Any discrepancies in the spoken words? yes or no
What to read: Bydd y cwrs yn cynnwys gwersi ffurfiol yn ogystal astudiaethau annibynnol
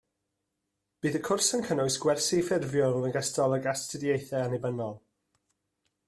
yes